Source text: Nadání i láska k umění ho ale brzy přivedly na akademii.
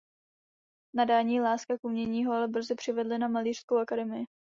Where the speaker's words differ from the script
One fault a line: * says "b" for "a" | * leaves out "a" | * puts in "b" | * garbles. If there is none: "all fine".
* puts in "malířskou"